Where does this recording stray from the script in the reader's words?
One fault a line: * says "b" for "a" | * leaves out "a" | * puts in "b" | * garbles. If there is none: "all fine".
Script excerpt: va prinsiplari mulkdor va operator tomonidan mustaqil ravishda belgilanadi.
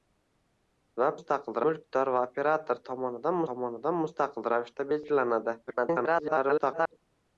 * says "mustaqil" for "prinsiplari"
* puts in "tomonidan"
* garbles